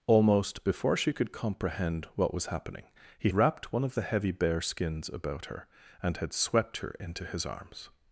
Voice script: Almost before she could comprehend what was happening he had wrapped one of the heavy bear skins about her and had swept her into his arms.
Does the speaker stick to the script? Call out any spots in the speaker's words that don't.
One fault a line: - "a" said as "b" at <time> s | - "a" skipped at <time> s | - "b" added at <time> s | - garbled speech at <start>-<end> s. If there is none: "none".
- "had" skipped at 3.3 s